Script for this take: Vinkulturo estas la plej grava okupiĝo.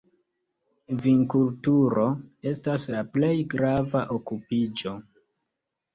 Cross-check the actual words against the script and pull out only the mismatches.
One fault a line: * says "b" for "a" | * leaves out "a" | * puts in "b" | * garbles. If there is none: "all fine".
all fine